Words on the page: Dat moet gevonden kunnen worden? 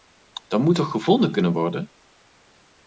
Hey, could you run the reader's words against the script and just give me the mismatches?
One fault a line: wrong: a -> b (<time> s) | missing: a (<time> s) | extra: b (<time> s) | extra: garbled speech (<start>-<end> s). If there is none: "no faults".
extra: toch (0.8 s)